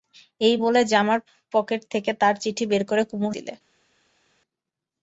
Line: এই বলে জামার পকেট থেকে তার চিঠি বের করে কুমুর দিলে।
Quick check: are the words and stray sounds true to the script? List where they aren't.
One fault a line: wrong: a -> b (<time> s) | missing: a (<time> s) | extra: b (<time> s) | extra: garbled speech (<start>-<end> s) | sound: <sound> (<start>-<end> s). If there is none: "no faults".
no faults